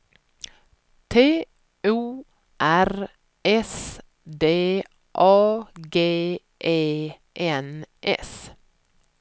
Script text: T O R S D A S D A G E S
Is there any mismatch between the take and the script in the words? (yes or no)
yes